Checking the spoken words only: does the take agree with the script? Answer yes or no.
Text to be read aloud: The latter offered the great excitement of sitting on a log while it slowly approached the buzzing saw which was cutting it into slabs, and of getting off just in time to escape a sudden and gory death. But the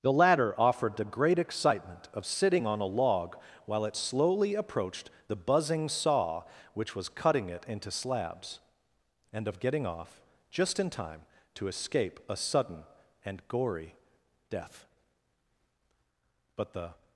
yes